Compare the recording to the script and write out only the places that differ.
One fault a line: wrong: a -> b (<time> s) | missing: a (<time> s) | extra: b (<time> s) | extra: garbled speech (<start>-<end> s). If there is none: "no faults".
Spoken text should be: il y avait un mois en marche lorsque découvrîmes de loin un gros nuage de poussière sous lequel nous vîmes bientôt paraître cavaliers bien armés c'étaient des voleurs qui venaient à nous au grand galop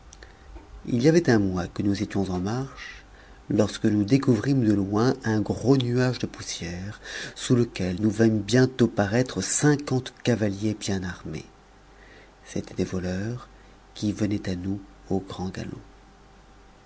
extra: que nous étions (1.7 s)
extra: nous (3.8 s)
extra: cinquante (9.4 s)